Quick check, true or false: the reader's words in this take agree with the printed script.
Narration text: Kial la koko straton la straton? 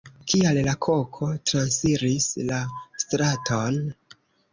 false